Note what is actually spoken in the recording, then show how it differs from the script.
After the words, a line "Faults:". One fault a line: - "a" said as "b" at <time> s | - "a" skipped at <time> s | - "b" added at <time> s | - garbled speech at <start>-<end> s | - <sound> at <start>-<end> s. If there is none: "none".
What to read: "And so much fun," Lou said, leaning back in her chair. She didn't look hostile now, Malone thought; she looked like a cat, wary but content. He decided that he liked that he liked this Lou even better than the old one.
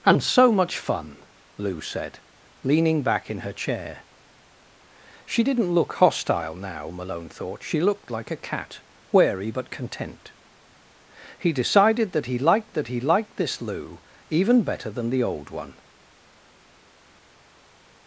"And so much fun," Lou said, leaning back in her chair. She didn't look hostile now, Malone thought; she looked like a cat, wary but content. He decided that he liked that he liked this Lou even better than the old one.
Faults:
none